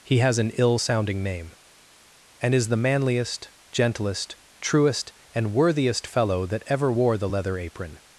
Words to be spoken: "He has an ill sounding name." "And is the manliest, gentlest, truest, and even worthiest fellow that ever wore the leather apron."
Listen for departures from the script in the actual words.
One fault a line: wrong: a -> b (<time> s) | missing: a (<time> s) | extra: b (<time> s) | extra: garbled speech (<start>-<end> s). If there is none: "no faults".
missing: even (5.5 s)